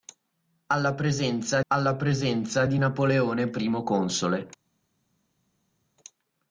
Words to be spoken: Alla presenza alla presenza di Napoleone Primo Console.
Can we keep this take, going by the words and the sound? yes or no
yes